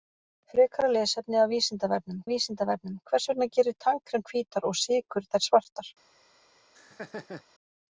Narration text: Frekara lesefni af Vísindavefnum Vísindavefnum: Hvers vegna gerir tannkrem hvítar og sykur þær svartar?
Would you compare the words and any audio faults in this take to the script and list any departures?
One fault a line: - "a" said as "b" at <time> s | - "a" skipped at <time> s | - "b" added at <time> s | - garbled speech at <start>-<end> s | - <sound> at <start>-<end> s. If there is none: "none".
- laugh at 6.7-7.4 s